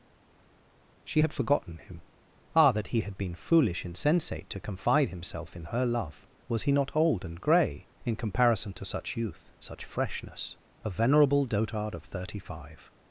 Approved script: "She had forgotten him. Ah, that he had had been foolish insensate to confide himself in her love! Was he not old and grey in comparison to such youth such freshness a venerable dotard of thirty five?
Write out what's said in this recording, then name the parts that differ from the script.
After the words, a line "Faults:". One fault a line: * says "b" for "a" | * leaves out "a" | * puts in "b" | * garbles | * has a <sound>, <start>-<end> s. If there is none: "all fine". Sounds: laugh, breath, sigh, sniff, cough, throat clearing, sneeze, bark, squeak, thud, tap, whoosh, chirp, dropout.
"She had forgotten him. Ah, that he had been foolish insensate to confide himself in her love! Was he not old and grey in comparison to such youth such freshness a venerable dotard of thirty five?
Faults:
* leaves out "had"